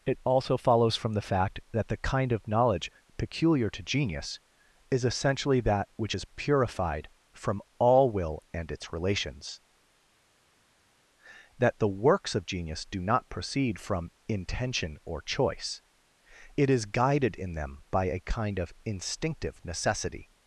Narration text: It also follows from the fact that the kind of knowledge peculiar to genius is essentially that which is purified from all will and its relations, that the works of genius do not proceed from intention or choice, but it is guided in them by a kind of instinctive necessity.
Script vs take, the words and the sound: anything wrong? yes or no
yes